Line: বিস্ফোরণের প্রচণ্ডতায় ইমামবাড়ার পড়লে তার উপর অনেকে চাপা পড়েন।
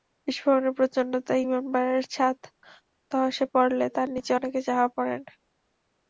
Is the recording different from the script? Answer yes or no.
yes